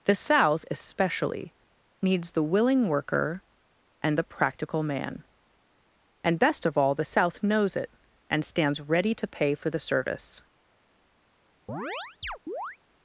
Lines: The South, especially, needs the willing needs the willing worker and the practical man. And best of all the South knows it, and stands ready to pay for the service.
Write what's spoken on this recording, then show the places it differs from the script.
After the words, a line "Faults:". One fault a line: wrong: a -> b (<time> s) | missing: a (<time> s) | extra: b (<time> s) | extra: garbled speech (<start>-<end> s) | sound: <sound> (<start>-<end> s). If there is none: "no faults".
The South, especially, needs the willing worker and the practical man. And best of all the South knows it, and stands ready to pay for the service.
Faults:
missing: needs the willing (2.9 s)
sound: chirp (11.7-12.8 s)